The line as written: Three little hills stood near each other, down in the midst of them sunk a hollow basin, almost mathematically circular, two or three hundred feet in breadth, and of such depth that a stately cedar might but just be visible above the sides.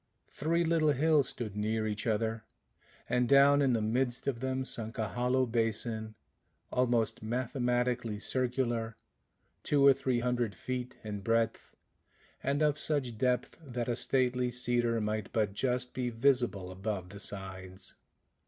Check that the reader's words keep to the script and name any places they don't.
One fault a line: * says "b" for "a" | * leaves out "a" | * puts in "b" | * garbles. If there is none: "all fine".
* puts in "and"